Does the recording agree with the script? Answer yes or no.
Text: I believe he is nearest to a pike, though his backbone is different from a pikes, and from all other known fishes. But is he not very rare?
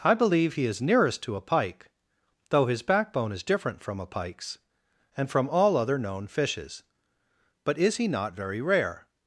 yes